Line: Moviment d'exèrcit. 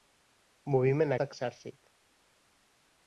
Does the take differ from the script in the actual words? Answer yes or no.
no